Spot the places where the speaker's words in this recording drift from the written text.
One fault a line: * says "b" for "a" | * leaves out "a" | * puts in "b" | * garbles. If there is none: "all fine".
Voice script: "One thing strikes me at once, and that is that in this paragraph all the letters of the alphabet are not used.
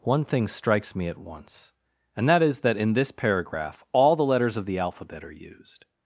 * leaves out "not"